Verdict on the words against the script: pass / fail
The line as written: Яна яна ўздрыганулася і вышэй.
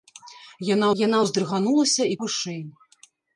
pass